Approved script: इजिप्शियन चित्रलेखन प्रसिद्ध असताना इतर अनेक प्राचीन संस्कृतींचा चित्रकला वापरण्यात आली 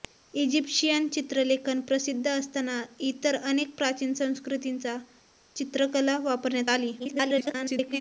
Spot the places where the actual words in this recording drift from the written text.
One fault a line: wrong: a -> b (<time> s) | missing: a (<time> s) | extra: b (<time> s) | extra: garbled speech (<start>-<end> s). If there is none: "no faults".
extra: garbled speech (7.0-8.0 s)